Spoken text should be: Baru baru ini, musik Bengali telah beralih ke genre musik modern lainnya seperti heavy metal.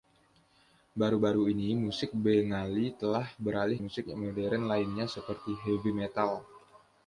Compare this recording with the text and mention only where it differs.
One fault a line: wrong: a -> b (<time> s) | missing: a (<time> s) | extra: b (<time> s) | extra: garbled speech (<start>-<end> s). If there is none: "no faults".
missing: ke genre (3.8 s)